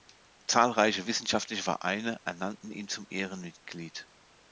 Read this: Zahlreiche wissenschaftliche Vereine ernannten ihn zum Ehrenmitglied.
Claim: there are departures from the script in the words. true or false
false